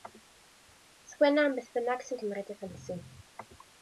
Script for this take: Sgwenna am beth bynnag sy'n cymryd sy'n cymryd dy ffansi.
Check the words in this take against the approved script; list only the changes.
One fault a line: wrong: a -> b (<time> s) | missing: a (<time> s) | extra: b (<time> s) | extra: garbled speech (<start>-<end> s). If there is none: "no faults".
missing: sy'n cymryd (2.5 s)